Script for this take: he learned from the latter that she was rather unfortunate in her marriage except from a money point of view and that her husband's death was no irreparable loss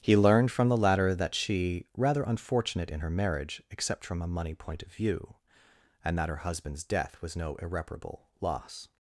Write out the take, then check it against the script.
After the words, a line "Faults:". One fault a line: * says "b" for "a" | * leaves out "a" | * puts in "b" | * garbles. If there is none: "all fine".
he learned from the latter that she rather unfortunate in her marriage except from a money point of view and that her husband's death was no irreparable loss
Faults:
* leaves out "was"